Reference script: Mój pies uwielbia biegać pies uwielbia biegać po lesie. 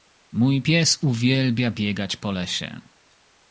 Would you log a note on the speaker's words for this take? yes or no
yes